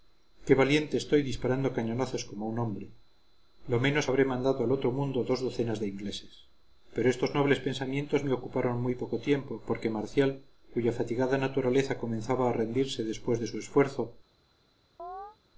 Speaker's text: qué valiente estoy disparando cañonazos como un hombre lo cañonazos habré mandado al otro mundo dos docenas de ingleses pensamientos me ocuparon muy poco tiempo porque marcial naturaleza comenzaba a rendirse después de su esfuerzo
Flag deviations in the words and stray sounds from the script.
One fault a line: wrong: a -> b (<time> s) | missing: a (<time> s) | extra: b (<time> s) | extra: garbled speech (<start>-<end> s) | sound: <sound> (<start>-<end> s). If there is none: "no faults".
wrong: cañonazos -> menos (3.8 s)
extra: pero estos nobles (6.9 s)
extra: cuya fatigada (10.7 s)
sound: chirp (15.0-15.4 s)